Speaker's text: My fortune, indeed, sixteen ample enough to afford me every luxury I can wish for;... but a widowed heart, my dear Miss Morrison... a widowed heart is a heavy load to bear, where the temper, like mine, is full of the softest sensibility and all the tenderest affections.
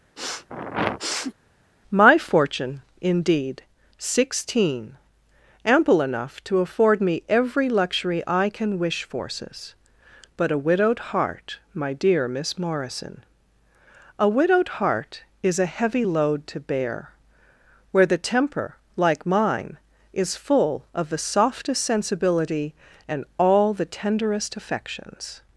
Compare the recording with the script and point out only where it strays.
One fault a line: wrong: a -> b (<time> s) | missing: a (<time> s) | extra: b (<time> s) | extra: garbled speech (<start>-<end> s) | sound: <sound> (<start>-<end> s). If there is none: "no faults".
sound: sniff (0.2-1.3 s)
wrong: for -> forces (9.0 s)